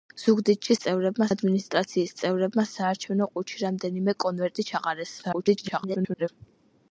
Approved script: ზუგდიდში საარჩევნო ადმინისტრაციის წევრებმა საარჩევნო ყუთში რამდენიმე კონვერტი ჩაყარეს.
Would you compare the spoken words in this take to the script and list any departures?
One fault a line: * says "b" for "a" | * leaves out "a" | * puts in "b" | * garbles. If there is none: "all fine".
* says "წევრებმა" for "საარჩევნო"
* garbles